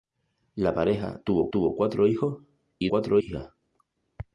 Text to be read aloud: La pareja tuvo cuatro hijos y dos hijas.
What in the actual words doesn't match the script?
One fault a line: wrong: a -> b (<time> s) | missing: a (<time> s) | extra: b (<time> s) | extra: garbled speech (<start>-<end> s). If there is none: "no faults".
extra: tuvo (1.5 s)
wrong: dos -> cuatro (2.9 s)